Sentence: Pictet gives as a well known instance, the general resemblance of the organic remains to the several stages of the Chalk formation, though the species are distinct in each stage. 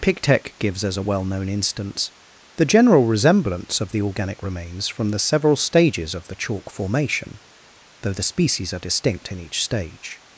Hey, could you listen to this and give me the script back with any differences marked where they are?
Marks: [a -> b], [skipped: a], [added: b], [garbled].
Pictet gives as a well known instance, the general resemblance of the organic remains [to -> from] the several stages of the Chalk formation, though the species are distinct in each stage.